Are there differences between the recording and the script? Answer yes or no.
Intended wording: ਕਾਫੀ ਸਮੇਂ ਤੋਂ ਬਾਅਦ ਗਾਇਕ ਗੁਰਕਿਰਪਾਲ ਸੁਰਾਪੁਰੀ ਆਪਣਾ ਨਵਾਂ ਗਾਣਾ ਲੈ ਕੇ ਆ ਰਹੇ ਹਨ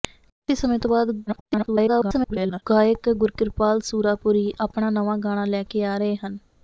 yes